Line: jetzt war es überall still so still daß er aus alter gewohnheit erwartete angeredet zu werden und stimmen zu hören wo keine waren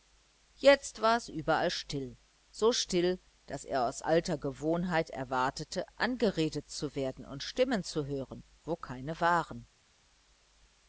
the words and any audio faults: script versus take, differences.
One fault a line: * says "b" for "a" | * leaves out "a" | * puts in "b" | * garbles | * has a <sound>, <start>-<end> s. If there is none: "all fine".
all fine